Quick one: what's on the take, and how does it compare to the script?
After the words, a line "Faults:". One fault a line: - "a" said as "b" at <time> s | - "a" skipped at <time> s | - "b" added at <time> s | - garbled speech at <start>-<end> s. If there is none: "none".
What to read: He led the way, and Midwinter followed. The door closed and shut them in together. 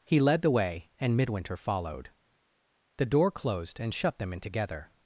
He led the way, and Midwinter followed. The door closed and shut them in together.
Faults:
none